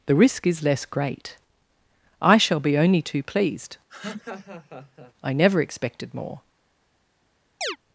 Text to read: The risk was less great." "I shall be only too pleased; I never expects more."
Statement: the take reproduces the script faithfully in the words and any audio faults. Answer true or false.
false